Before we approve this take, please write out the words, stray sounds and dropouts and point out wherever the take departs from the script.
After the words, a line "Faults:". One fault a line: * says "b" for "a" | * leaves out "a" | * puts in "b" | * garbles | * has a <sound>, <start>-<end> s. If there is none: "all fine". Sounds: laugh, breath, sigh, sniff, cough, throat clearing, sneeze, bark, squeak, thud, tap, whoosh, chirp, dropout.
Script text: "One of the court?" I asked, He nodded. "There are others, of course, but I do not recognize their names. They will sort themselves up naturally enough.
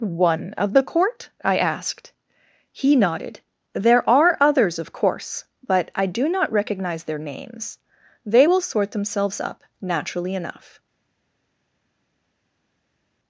"One of the court?" I asked, He nodded. "There are others, of course, but I do not recognize their names. They will sort themselves up naturally enough.
Faults:
all fine